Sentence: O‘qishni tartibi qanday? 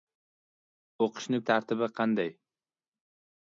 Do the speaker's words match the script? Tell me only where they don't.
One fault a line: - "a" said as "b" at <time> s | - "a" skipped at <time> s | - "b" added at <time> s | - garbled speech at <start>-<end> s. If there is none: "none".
none